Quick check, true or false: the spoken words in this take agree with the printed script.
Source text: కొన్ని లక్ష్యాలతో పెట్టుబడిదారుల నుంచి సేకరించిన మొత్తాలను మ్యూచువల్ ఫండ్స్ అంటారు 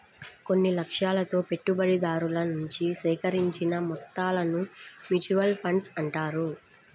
true